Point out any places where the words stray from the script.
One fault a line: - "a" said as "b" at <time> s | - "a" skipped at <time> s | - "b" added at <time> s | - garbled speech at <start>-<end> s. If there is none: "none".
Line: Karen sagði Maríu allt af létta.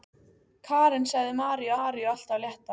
- "Maríu" added at 1.8 s